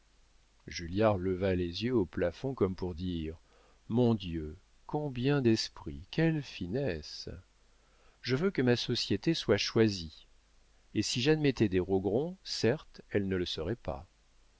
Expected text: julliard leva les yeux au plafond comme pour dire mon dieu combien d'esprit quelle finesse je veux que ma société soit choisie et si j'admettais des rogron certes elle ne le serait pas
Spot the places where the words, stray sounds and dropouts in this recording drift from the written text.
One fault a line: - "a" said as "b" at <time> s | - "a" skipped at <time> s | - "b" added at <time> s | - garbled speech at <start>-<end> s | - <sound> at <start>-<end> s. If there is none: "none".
none